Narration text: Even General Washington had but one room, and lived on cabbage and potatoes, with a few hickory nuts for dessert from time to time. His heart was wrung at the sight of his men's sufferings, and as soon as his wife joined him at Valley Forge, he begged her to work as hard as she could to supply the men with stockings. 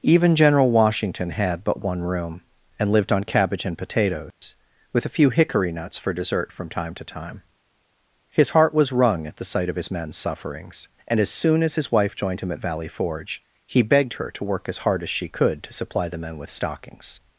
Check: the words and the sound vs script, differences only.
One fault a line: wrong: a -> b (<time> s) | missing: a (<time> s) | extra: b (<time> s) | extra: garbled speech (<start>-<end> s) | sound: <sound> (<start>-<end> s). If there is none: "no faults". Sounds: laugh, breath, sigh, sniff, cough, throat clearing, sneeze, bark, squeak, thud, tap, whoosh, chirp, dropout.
sound: dropout (4.3-4.4 s)